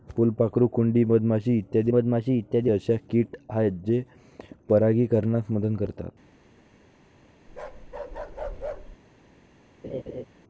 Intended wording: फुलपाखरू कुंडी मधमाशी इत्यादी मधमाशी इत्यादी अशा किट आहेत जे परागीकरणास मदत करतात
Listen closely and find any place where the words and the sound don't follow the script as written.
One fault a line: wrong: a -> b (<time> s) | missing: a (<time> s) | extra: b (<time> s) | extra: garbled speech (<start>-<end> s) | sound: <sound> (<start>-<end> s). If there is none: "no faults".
sound: bark (7.5-9.0 s)
sound: laugh (9.8-10.2 s)